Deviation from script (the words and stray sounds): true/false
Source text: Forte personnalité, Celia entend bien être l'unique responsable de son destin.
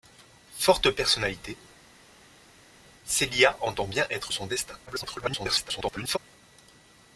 true